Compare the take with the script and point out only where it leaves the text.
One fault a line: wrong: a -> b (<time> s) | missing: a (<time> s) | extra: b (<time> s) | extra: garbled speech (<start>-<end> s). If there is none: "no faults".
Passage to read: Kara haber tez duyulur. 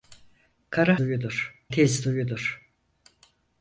wrong: haber -> duyulur (1.0 s)